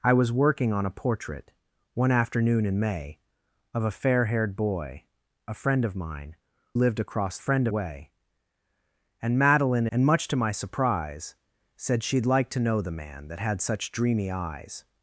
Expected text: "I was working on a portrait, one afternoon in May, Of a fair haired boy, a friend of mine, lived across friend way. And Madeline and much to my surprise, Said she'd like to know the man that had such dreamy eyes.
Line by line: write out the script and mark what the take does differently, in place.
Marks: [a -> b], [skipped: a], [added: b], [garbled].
"I was working on a portrait, one afternoon in May, Of a fair haired boy, a friend of mine, lived across friend way. And Madeline and much to my surprise, Said she'd like to know the man that had such dreamy eyes.